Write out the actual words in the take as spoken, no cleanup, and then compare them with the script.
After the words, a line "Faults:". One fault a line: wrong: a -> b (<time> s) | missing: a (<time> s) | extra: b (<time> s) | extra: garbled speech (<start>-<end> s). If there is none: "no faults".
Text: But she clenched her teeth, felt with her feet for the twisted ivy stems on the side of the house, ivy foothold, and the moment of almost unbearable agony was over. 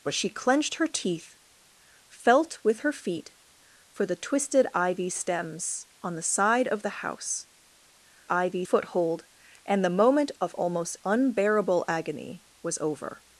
But she clenched her teeth, felt with her feet for the twisted ivy stems on the side of the house, ivy foothold, and the moment of almost unbearable agony was over.
Faults:
no faults